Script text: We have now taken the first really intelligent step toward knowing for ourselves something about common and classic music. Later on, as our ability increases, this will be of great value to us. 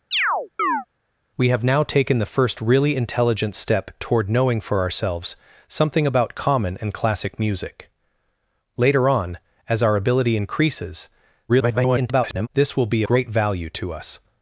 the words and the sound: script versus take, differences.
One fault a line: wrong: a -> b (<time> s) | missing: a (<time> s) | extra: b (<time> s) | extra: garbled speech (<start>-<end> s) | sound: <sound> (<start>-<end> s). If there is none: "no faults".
sound: chirp (0.1-0.9 s)
extra: garbled speech (11.5-12.5 s)
missing: of (13.0 s)